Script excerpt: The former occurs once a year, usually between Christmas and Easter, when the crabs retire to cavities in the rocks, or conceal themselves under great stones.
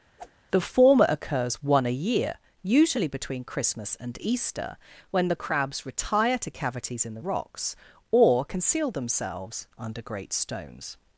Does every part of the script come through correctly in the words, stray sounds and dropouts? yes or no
no